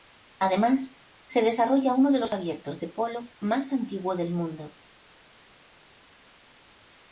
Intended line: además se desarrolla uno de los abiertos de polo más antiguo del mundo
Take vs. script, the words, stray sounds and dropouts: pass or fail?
pass